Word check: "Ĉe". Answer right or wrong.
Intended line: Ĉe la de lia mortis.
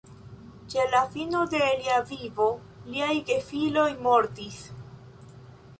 right